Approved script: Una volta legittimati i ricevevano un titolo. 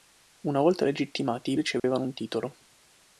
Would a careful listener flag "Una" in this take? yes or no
no